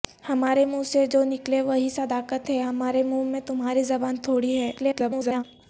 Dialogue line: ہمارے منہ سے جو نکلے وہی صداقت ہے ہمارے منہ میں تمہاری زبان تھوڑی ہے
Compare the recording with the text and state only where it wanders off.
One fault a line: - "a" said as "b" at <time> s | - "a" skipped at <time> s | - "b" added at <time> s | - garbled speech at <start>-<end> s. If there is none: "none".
- garbled speech at 4.8-5.4 s